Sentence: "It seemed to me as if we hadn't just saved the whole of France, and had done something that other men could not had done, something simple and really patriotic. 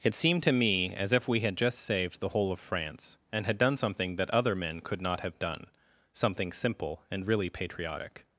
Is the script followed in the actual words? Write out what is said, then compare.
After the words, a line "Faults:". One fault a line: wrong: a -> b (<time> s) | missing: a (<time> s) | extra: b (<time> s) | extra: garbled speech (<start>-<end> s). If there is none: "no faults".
"It seemed to me as if we had just saved the whole of France, and had done something that other men could not have done, something simple and really patriotic.
Faults:
wrong: hadn't -> had (1.4 s)
wrong: had -> have (5.2 s)